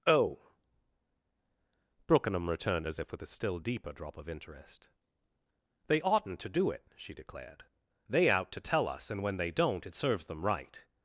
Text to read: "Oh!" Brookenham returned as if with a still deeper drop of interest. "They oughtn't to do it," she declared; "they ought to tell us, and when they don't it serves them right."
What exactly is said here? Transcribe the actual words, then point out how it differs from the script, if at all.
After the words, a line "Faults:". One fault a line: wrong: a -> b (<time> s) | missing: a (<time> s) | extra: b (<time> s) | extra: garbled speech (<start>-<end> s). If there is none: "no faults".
"Oh!" Brookenham returned as if with a still deeper drop of interest. "They oughtn't to do it," she declared; "they out to tell us, and when they don't it serves them right."
Faults:
wrong: ought -> out (8.3 s)